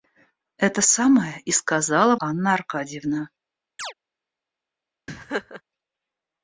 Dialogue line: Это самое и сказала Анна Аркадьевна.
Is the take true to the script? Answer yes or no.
yes